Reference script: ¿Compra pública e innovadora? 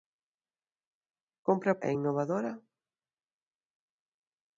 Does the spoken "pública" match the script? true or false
false